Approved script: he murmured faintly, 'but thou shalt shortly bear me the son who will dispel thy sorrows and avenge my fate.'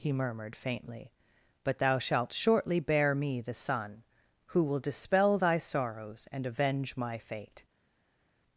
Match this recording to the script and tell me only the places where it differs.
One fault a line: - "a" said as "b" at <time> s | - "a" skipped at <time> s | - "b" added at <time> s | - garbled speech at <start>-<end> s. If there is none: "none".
none